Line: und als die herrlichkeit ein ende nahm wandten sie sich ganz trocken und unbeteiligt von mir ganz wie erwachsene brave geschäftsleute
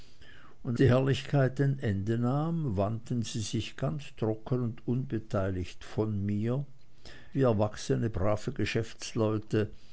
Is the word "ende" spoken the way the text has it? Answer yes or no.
yes